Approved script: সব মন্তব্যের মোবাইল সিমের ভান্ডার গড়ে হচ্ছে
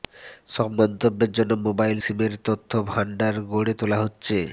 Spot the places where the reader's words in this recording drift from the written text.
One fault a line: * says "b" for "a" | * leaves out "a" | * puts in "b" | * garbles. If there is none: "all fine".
* puts in "জন্য"
* puts in "তথ্য"
* puts in "তোলা"